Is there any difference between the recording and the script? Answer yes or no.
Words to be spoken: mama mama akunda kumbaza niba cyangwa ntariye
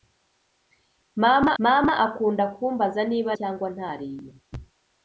no